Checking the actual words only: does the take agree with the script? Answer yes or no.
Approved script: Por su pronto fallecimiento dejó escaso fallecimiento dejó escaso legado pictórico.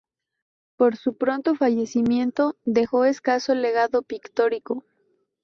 no